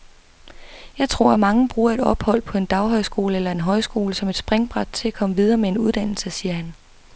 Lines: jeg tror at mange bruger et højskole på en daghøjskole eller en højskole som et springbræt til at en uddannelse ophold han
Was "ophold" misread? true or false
true